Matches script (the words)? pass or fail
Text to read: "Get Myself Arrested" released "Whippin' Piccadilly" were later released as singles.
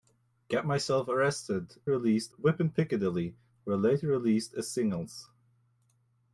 pass